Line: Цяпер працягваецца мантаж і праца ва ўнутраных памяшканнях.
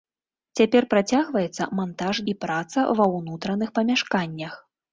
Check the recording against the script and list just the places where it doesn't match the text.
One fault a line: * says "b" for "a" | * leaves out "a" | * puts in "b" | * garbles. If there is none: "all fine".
all fine